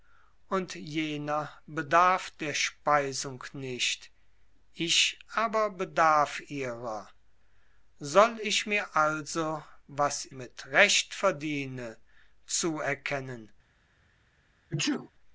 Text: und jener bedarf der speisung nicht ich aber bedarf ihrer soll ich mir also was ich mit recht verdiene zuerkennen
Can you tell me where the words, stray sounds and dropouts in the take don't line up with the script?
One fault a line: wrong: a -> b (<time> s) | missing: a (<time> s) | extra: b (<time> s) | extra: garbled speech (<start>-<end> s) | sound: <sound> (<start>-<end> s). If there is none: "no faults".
missing: ich (10.2 s)
sound: sneeze (14.7-15.1 s)